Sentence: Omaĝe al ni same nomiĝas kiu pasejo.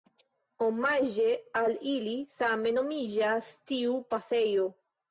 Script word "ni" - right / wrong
wrong